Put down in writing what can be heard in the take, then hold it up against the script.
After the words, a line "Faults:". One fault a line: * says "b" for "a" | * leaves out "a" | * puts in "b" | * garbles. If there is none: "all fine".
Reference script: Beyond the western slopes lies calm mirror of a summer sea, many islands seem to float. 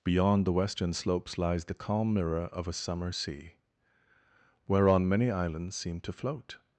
Beyond the western slopes lies the calm mirror of a summer sea, whereon many islands seem to float.
Faults:
* puts in "the"
* puts in "whereon"